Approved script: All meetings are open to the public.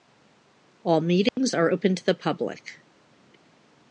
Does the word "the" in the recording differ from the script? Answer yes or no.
no